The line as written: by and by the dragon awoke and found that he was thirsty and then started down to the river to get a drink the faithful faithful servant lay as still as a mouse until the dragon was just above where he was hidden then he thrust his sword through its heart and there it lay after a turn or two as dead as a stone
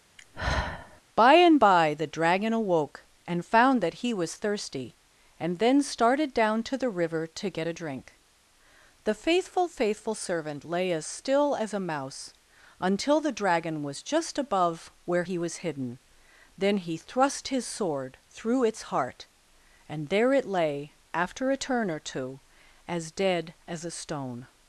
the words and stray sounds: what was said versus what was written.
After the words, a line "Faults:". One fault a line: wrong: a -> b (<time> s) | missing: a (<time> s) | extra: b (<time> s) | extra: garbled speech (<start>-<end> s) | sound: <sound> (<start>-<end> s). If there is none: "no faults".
by and by the dragon awoke and found that he was thirsty and then started down to the river to get a drink the faithful faithful servant lay as still as a mouse until the dragon was just above where he was hidden then he thrust his sword through its heart and there it lay after a turn or two as dead as a stone
Faults:
sound: sigh (0.2-1.0 s)